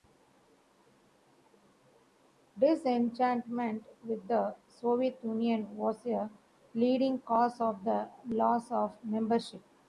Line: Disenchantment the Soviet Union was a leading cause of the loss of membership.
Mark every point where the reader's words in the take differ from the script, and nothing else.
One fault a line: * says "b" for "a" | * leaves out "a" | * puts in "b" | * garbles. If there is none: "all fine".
* puts in "with"